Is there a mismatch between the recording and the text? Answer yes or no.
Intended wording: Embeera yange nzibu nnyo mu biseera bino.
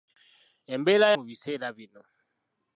yes